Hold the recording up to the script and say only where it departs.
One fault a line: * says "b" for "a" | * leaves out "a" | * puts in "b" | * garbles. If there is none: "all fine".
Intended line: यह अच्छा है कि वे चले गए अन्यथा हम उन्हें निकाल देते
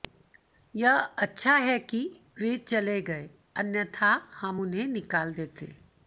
all fine